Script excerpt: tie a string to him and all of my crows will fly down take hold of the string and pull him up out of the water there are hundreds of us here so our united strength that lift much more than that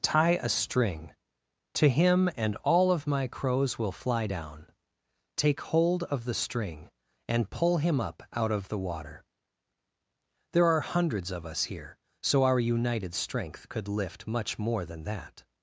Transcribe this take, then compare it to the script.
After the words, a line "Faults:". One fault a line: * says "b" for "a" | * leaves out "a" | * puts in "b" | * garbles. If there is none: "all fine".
tie a string to him and all of my crows will fly down take hold of the string and pull him up out of the water there are hundreds of us here so our united strength could lift much more than that
Faults:
* says "could" for "that"